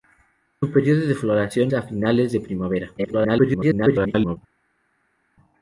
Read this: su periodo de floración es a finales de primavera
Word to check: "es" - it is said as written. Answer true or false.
false